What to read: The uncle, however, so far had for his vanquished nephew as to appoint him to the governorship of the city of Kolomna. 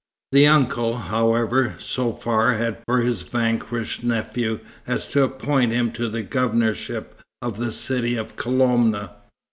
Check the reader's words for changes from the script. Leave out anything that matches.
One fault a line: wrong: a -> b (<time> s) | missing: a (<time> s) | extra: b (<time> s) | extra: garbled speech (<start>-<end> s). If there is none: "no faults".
no faults